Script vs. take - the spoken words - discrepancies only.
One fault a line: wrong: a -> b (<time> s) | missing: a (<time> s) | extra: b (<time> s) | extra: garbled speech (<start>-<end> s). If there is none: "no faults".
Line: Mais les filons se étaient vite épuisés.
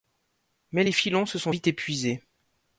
wrong: étaient -> sont (1.4 s)